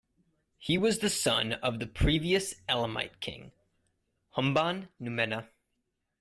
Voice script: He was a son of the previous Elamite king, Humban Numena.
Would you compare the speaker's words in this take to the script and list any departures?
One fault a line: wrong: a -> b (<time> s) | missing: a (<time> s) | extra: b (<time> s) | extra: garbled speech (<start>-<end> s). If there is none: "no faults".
wrong: a -> the (1.0 s)